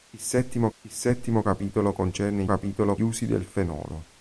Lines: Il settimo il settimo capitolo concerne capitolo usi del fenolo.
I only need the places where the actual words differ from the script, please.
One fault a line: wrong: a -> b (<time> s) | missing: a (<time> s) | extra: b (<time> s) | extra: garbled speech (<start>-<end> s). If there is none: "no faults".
no faults